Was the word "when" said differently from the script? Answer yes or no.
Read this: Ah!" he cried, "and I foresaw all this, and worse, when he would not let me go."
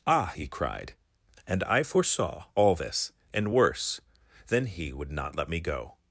yes